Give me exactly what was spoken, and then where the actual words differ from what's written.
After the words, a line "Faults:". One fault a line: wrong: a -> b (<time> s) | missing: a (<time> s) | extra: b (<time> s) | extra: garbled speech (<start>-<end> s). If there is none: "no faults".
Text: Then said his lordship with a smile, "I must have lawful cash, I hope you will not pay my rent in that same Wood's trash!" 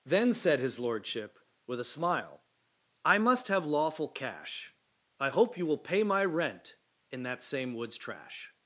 Then said his lordship with a smile, "I must have lawful cash, I hope you will pay my rent in that same Wood's trash!"
Faults:
missing: not (5.8 s)